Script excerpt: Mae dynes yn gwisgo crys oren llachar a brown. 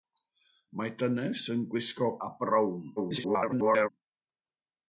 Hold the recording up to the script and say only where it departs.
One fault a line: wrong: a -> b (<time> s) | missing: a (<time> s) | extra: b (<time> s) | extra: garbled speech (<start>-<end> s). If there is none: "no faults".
missing: crys oren llachar (2.1 s)
extra: garbled speech (3.0-3.9 s)